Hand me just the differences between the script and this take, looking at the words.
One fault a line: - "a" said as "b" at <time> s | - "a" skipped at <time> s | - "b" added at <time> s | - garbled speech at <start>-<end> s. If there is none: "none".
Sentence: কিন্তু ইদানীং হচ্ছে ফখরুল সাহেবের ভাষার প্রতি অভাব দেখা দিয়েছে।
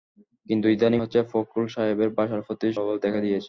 none